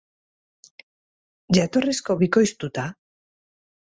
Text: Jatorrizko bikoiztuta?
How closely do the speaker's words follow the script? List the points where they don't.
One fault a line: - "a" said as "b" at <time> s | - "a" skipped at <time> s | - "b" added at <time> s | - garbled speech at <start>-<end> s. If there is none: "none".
none